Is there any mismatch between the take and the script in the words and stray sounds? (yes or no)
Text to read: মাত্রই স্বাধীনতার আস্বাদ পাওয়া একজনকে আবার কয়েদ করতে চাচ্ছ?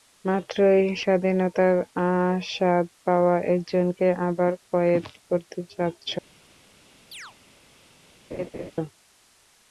yes